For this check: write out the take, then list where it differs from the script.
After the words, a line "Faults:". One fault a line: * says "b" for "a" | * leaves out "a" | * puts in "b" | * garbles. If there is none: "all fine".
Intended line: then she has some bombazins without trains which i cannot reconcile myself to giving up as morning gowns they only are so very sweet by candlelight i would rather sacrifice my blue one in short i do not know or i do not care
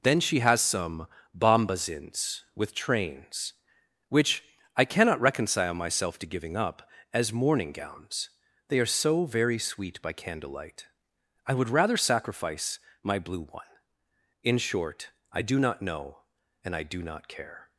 then she has some bombazins with trains which i cannot reconcile myself to giving up as morning gowns they are so very sweet by candlelight i would rather sacrifice my blue one in short i do not know and i do not care
Faults:
* says "with" for "without"
* leaves out "only"
* says "and" for "or"